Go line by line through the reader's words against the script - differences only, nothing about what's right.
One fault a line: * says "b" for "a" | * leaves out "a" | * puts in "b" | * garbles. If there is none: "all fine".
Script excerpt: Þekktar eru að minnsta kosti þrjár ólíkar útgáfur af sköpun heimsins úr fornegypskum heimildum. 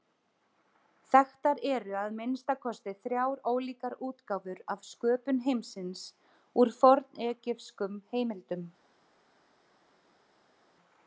all fine